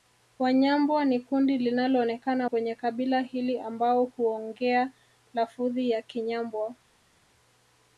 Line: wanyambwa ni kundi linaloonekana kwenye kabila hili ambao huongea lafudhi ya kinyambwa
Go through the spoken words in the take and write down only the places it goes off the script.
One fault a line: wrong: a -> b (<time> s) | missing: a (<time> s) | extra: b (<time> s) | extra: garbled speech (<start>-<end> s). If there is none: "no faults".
no faults